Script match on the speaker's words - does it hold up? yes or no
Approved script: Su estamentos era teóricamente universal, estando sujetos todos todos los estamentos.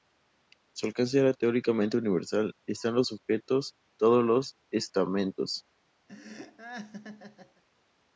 no